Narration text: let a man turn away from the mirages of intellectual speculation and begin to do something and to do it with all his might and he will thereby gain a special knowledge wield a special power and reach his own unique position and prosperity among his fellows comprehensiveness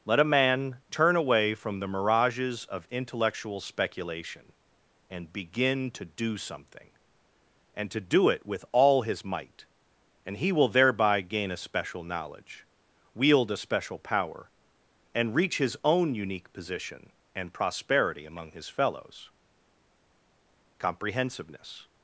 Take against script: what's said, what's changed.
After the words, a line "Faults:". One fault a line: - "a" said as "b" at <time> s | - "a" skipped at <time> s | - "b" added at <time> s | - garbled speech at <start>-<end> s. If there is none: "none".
let a man turn away from the mirages of intellectual speculation and begin to do something and to do it with all his might and he will thereby gain a special knowledge wield a special power and reach his own unique position and prosperity among his fellows comprehensiveness
Faults:
none